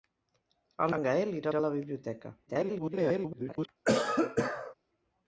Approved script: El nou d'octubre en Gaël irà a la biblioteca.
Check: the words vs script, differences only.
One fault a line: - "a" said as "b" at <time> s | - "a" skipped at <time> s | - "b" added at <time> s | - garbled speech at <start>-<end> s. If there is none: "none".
- "nou d'octubre" skipped at 0.9 s
- "irà" added at 1.5 s
- garbled speech at 2.5-3.7 s